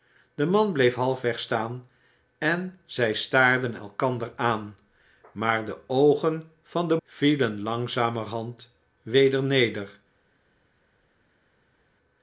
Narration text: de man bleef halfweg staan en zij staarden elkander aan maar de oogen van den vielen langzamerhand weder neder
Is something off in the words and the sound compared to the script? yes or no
no